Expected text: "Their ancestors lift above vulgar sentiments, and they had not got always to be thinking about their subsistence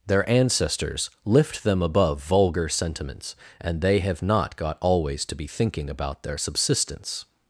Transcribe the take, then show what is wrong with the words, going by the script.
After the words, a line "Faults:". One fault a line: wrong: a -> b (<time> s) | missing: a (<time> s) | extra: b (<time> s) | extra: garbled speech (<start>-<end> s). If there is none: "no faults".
"Their ancestors lift them above vulgar sentiments, and they have not got always to be thinking about their subsistence
Faults:
extra: them (1.6 s)
wrong: had -> have (4.0 s)